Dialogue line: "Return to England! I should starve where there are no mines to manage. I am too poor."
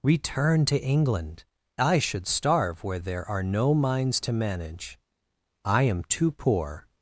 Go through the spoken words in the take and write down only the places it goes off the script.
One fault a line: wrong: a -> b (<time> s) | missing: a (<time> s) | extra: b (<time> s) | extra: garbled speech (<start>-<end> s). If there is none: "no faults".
no faults